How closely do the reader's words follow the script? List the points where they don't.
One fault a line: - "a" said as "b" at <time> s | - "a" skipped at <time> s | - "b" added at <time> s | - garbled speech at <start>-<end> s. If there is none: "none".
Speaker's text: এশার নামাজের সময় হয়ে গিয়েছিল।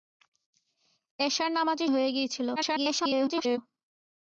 - "সময়" skipped at 1.9 s
- garbled speech at 2.6-3.6 s